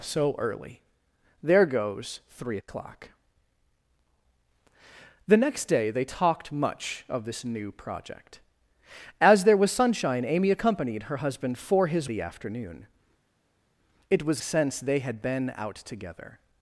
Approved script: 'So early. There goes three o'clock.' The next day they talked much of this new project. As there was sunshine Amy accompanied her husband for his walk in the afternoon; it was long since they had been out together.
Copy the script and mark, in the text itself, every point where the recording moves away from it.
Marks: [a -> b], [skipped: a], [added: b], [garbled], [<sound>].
'So early. There goes three o'clock.' The next day they talked much of this new project. As there was sunshine Amy accompanied her husband for his [skipped: walk in] the afternoon; it was [skipped: long] since they had been out together.